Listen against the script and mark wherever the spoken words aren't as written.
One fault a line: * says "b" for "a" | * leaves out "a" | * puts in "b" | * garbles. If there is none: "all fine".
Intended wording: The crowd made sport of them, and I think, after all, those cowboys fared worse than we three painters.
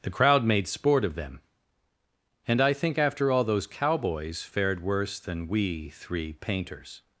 all fine